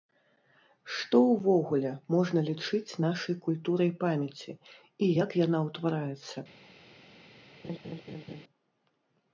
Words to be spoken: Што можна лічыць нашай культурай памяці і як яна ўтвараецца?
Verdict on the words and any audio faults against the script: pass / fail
fail